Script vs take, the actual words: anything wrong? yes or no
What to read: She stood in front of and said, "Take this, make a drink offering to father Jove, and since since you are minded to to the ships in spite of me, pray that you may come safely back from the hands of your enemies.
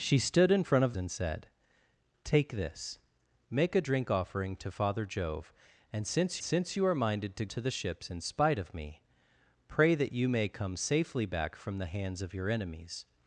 no